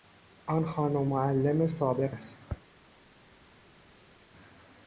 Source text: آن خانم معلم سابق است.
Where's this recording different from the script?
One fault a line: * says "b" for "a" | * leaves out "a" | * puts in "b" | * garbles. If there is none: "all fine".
all fine